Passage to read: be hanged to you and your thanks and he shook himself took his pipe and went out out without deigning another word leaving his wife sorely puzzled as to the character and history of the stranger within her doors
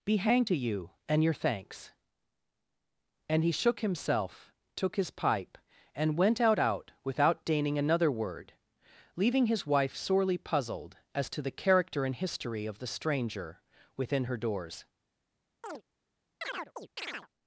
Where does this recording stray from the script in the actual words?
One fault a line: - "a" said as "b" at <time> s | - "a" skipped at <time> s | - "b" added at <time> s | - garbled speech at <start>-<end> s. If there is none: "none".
none